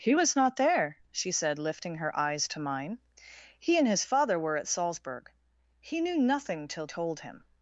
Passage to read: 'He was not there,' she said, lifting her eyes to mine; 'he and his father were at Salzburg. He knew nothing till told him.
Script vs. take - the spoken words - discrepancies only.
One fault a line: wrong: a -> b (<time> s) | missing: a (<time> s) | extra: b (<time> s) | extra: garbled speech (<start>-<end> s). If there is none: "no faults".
no faults